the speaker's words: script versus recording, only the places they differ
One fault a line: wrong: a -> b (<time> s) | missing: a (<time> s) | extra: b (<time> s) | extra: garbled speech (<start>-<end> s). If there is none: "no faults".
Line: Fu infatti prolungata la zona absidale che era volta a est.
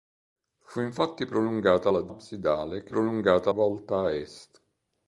missing: zona (2.1 s)
wrong: era -> prolungata (2.9 s)